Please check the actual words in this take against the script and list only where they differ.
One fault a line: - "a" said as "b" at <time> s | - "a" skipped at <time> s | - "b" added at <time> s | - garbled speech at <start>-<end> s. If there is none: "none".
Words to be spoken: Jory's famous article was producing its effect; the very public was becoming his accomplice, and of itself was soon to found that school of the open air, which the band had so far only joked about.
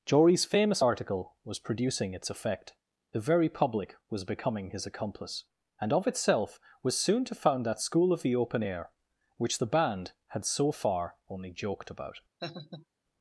none